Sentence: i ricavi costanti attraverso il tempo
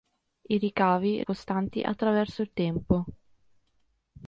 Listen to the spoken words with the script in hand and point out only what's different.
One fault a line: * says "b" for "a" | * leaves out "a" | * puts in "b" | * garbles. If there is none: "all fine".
all fine